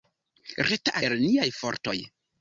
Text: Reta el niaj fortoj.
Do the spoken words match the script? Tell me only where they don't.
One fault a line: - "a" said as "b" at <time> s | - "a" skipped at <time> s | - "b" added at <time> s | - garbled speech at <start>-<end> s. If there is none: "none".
none